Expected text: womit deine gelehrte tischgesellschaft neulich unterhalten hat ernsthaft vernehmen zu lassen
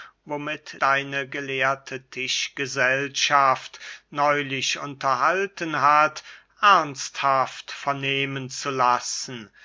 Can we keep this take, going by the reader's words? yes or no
yes